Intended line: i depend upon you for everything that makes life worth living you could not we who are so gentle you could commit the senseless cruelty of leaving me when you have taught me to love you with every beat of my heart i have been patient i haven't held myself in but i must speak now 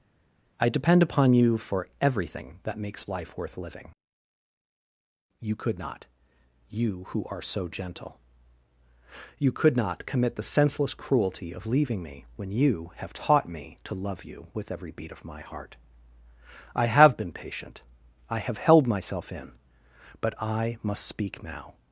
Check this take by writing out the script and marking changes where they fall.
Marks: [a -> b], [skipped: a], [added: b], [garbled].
i depend upon you for everything that makes life worth living you could not [we -> you] who are so gentle you could [added: not] commit the senseless cruelty of leaving me when you have taught me to love you with every beat of my heart i have been patient i [haven't -> have] held myself in but i must speak now